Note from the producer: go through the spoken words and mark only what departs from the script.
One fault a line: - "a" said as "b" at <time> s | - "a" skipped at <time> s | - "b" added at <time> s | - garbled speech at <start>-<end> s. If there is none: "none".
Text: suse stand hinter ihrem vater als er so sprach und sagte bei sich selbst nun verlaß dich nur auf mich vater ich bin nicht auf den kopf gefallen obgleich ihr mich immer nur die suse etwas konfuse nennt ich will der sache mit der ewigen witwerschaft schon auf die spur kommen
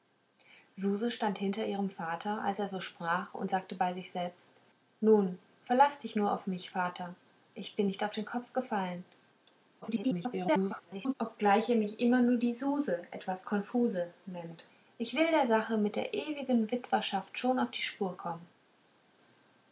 - garbled speech at 9.8-11.1 s